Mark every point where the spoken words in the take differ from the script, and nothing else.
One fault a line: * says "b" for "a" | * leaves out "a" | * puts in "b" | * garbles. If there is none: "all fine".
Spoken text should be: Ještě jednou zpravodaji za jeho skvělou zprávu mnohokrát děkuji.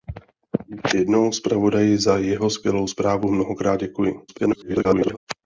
* garbles